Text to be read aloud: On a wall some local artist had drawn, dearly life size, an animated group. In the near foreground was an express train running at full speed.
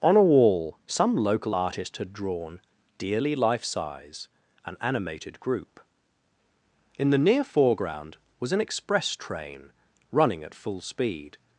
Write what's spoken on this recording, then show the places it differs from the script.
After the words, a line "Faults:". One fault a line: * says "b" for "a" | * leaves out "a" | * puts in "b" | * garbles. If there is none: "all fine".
On a wall some local artist had drawn, dearly life size, an animated group. In the near foreground was an express train running at full speed.
Faults:
all fine